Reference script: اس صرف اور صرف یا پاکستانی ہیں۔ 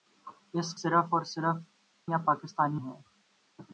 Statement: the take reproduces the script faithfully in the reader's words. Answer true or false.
true